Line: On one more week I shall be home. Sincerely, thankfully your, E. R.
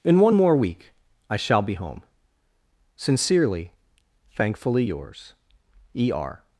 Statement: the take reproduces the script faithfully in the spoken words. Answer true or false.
false